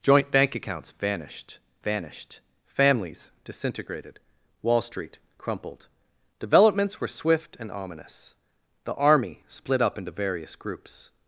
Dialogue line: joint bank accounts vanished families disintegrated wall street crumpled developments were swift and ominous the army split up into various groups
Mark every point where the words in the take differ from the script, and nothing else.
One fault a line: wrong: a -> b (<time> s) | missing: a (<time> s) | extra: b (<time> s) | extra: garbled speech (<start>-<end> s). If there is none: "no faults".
extra: vanished (1.8 s)